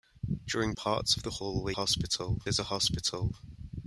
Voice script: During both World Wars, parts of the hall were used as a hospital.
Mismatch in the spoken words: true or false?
true